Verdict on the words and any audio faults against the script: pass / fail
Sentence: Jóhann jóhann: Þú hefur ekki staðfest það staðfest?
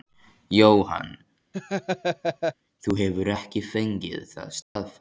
fail